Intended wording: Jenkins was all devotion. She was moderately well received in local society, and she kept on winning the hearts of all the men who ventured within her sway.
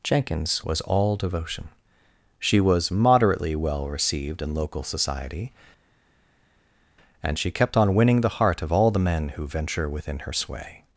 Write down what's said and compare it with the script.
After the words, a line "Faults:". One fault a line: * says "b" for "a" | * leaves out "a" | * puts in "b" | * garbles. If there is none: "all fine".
Jenkins was all devotion. She was moderately well received in local society, and she kept on winning the heart of all the men who venture within her sway.
Faults:
* says "heart" for "hearts"
* says "venture" for "ventured"